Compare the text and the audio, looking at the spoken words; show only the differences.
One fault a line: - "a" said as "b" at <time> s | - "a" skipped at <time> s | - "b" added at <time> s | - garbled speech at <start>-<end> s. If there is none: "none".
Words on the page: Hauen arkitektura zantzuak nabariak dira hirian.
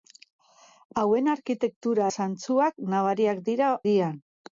none